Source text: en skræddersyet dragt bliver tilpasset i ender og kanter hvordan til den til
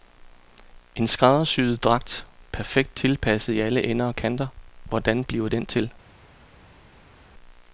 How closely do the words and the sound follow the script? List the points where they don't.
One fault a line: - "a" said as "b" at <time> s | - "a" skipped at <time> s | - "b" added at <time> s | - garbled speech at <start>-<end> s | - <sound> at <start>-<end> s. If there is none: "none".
- "bliver" said as "perfekt" at 2.5 s
- "alle" added at 3.6 s
- "til" said as "bliver" at 5.2 s